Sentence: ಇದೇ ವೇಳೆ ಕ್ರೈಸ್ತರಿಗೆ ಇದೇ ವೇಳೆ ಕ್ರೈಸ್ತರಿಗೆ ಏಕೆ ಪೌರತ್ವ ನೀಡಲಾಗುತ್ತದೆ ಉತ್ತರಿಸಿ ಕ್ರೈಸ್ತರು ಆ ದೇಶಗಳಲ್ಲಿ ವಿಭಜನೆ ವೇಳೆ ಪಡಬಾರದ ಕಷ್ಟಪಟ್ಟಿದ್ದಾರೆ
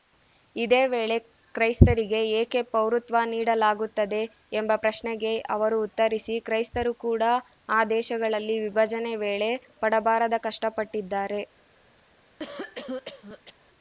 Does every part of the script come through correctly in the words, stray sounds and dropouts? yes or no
no